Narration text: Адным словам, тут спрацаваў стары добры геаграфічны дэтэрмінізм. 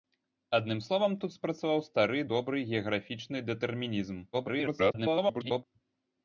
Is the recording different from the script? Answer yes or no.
yes